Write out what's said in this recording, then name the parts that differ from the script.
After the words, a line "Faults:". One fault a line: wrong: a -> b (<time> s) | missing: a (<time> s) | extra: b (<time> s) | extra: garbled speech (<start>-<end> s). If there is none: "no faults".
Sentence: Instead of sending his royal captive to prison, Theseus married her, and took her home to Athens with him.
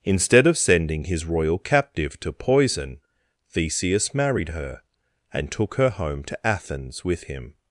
Instead of sending his royal captive to poison, Theseus married her, and took her home to Athens with him.
Faults:
wrong: prison -> poison (2.3 s)